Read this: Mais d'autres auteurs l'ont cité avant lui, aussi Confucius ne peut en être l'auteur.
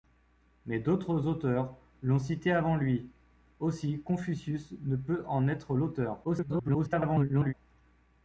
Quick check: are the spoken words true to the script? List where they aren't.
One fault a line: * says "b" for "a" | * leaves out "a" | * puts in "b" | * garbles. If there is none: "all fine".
* garbles